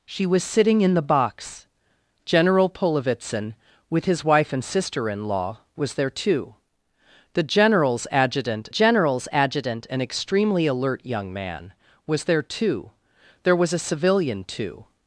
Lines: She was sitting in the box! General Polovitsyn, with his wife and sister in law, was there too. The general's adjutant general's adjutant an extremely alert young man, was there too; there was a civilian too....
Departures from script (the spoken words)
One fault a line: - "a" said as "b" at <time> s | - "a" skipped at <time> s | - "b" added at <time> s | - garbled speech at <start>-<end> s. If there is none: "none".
none